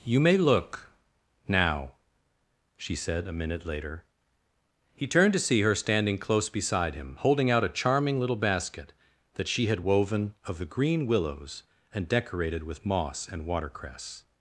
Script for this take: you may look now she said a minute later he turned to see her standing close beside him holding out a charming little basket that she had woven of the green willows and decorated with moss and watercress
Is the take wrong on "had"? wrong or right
right